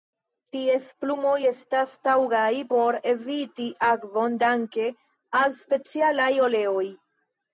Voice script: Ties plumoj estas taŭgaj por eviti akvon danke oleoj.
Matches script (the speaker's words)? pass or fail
fail